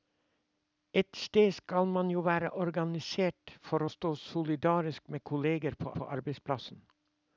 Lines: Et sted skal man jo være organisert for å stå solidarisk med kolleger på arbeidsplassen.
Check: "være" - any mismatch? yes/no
no